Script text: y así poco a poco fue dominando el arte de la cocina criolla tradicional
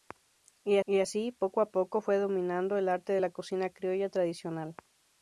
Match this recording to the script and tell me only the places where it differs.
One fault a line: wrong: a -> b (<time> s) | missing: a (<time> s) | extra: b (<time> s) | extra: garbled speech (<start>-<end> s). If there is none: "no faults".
extra: y (0.8 s)